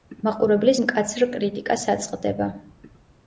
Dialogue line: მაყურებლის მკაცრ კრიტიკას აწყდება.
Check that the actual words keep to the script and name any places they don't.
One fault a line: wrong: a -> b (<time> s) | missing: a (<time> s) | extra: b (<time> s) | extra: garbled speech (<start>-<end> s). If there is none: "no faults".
no faults